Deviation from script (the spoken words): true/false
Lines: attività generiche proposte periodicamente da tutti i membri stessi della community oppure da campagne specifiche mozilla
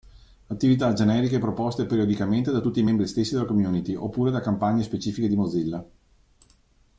true